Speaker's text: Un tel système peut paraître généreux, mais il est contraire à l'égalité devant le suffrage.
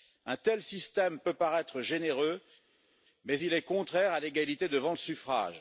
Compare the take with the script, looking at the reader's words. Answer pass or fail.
pass